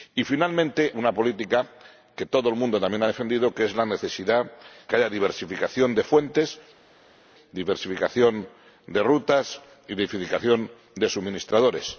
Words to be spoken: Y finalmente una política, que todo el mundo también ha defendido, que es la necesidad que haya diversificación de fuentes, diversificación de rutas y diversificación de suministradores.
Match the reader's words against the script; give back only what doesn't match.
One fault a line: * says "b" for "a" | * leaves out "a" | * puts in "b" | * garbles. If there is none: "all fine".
all fine